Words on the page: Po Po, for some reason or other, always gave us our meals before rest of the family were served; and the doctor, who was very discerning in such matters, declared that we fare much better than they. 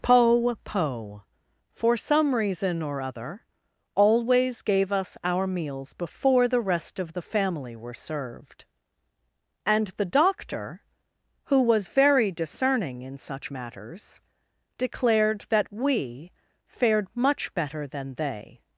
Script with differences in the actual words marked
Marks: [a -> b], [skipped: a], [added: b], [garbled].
Po Po, for some reason or other, always gave us our meals before [added: the] rest of the family were served; and the doctor, who was very discerning in such matters, declared that we [fare -> fared] much better than they.